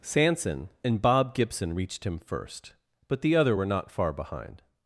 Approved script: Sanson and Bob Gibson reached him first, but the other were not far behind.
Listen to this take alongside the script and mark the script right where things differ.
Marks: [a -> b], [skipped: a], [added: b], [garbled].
Sanson and Bob Gibson reached him first, but the other were not far behind.